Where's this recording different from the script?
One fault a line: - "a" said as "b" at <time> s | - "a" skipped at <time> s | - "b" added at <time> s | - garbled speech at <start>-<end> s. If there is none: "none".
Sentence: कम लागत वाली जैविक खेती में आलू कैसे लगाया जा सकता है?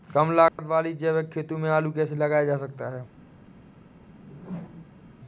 none